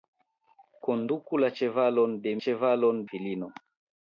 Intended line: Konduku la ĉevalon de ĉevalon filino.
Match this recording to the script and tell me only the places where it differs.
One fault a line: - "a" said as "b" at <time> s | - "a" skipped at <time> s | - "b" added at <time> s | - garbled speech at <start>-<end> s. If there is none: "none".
none